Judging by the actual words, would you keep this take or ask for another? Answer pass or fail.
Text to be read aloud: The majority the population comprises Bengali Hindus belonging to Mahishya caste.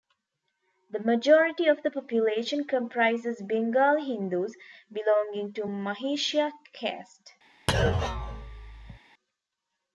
fail